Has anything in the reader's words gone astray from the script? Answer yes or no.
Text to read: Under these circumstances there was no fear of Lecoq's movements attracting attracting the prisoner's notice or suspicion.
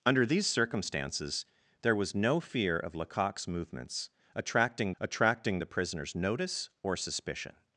no